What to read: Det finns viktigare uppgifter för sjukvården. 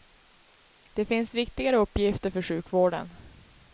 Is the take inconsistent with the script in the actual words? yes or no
no